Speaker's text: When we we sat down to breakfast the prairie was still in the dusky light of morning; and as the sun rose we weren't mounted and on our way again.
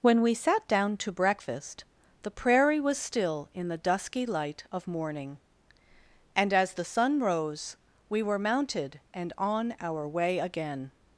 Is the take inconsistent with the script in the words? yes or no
yes